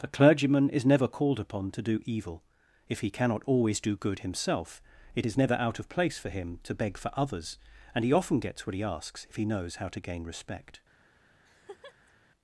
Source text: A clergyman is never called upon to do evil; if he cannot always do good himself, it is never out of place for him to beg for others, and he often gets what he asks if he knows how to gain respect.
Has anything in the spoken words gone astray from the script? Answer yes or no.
no